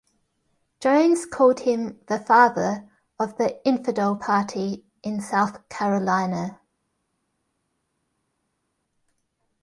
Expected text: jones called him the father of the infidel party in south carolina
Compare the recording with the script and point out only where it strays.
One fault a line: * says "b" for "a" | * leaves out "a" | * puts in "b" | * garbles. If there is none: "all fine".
all fine